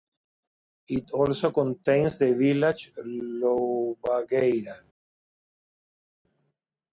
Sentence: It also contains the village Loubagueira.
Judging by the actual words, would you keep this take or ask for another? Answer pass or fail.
pass